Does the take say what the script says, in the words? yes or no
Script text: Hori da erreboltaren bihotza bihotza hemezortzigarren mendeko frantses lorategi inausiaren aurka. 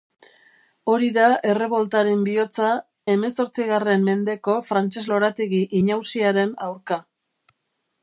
no